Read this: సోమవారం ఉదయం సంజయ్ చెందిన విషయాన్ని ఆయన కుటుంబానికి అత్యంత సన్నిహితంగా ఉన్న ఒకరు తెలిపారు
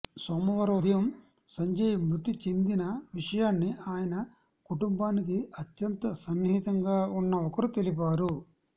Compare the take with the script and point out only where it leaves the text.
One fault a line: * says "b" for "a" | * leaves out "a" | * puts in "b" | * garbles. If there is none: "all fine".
* puts in "మృతి"